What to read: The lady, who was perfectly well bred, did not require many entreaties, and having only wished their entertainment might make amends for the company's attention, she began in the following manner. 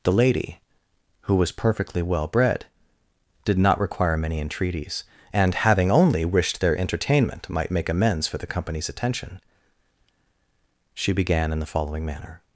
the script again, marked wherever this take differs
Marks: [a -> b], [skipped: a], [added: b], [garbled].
The lady, who was perfectly well bred, did not require many entreaties, and having only wished their entertainment might make amends for the company's attention, she began in the following manner.